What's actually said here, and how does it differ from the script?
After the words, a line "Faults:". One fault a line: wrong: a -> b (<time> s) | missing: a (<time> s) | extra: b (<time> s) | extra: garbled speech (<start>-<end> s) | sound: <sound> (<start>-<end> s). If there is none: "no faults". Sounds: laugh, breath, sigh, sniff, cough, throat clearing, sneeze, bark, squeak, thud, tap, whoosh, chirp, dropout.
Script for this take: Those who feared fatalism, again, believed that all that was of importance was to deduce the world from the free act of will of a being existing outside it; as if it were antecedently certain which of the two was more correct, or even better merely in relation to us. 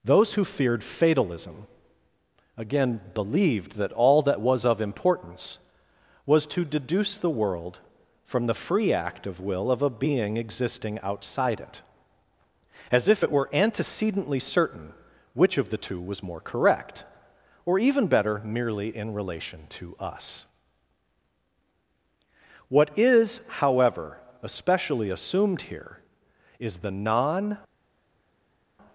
Those who feared fatalism, again, believed that all that was of importance was to deduce the world from the free act of will of a being existing outside it; as if it were antecedently certain which of the two was more correct, or even better merely in relation to us. What is, however, especially assumed here is the non
Faults:
extra: What is however especially assumed here is the non (22.7 s)